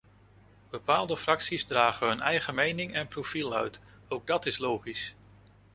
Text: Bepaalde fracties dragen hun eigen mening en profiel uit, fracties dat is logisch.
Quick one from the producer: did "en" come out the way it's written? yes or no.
yes